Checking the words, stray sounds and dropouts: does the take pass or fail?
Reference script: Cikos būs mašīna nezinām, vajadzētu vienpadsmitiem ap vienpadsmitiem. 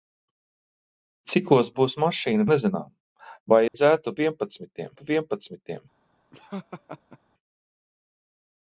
fail